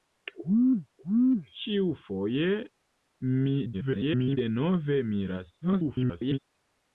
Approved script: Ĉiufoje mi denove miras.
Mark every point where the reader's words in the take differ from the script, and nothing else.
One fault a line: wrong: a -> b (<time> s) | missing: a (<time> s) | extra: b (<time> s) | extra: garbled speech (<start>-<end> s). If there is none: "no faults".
extra: garbled speech (3.7-4.4 s)
extra: garbled speech (5.6-6.4 s)